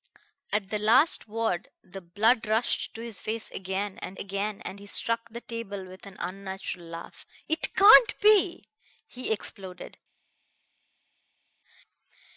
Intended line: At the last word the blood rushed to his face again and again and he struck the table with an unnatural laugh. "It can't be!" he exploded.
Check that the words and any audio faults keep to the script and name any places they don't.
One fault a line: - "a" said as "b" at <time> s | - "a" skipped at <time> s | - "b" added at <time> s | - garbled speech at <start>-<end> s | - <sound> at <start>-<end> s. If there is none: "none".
none